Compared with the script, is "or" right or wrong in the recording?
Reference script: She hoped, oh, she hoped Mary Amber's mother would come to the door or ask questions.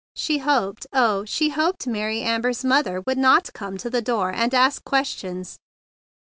wrong